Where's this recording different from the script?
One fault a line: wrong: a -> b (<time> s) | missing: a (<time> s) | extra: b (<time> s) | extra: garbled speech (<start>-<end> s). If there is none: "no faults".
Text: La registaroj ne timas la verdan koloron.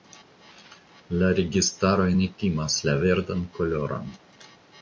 no faults